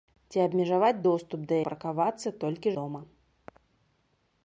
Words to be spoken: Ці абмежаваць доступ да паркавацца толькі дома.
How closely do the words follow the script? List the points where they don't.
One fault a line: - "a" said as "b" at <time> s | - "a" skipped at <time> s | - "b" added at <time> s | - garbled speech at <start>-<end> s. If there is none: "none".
none